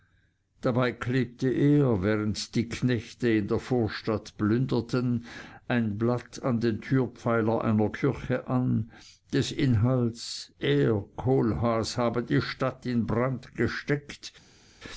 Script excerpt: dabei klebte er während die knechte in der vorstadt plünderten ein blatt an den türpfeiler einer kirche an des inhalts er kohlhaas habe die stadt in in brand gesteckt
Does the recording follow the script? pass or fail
fail